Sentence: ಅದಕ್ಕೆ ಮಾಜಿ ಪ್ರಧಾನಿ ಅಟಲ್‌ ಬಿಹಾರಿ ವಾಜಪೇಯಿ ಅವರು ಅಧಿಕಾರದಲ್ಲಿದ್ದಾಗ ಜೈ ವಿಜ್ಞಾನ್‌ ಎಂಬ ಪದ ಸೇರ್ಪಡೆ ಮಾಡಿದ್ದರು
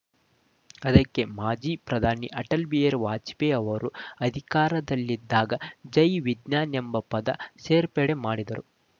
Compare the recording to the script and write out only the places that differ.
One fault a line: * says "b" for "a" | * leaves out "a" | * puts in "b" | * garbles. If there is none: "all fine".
all fine